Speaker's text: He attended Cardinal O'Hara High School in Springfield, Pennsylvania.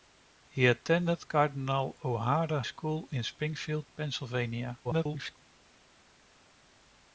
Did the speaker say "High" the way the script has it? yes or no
no